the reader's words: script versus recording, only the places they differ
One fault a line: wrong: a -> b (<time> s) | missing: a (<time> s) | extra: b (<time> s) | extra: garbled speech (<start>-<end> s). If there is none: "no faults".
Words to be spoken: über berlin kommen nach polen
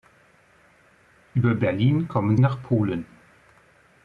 no faults